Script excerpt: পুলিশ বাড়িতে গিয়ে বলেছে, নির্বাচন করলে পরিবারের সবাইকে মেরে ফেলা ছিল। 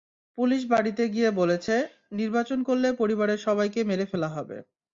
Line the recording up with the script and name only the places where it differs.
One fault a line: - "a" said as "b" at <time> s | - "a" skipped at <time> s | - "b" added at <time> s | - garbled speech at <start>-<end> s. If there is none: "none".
- "ছিল" said as "হবে" at 4.3 s